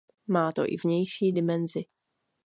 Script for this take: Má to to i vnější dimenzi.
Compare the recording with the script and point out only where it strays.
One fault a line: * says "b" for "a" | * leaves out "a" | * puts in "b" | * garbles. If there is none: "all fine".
* leaves out "to"